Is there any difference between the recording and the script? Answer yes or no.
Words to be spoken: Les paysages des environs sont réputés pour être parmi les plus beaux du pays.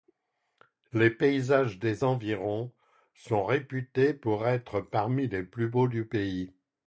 no